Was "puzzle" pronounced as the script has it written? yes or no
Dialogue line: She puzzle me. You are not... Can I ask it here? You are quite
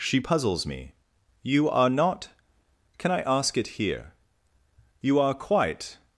no